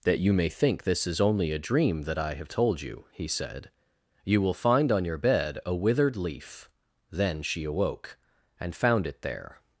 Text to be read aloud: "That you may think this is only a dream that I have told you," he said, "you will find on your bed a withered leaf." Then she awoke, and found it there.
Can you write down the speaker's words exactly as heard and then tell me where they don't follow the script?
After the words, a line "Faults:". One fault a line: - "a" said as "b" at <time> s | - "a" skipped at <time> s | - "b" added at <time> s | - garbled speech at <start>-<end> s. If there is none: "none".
"That you may think this is only a dream that I have told you," he said, "you will find on your bed a withered leaf." Then she awoke, and found it there.
Faults:
none